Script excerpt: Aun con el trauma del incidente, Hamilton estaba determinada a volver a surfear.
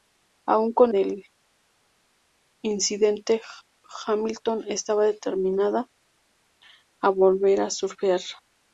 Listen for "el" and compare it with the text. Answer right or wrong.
wrong